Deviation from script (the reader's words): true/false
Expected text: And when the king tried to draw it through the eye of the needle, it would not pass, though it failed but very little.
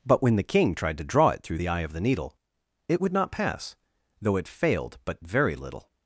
true